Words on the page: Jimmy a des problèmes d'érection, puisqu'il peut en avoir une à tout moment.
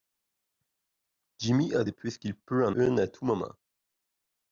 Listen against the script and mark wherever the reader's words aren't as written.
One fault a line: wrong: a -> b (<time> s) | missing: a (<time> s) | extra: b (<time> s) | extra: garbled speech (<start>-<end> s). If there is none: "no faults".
missing: problèmes d'érection (1.9 s)
missing: avoir (2.7 s)